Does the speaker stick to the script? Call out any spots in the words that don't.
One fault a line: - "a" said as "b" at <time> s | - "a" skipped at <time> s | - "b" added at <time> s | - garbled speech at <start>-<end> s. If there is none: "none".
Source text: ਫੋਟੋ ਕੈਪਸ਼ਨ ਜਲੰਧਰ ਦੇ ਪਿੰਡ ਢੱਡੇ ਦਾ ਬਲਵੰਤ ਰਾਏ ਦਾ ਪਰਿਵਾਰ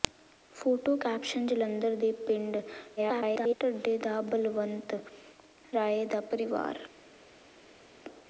- garbled speech at 3.0-3.6 s